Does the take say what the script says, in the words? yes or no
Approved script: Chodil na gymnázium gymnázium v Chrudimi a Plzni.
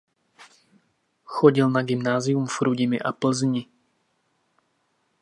no